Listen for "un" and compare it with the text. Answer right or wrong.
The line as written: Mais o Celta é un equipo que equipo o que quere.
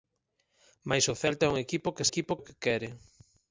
right